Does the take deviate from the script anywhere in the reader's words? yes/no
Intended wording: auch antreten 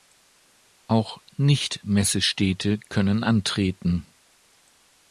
yes